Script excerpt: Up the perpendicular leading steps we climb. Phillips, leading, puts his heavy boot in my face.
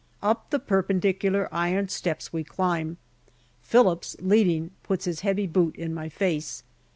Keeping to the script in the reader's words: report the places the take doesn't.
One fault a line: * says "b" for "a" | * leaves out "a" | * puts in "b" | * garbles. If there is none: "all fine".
* says "iron" for "leading"